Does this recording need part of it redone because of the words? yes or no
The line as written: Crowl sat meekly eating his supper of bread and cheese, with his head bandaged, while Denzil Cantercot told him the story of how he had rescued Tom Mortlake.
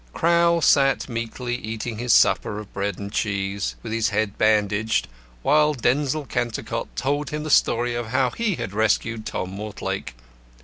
no